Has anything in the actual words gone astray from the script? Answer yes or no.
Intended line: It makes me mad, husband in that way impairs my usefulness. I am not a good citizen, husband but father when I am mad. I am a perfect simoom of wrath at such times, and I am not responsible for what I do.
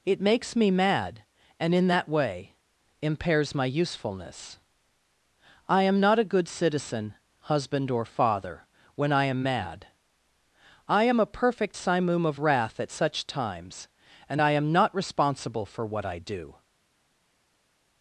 yes